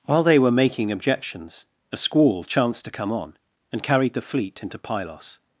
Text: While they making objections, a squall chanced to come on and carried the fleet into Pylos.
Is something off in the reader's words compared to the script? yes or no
yes